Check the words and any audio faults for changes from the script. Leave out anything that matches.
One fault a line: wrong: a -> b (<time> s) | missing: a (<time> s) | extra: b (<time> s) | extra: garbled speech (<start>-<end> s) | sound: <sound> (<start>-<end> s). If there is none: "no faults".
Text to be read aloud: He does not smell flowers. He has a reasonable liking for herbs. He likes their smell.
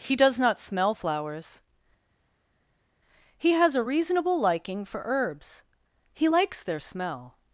no faults